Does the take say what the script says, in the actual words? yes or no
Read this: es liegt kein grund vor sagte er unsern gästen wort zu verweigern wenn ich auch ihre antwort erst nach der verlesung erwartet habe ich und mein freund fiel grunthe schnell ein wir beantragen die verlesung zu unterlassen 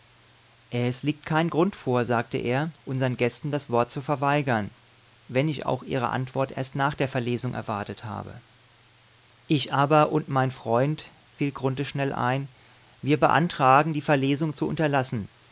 no